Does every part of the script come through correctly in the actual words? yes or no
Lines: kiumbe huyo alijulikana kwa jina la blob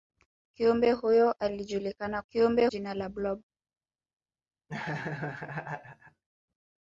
no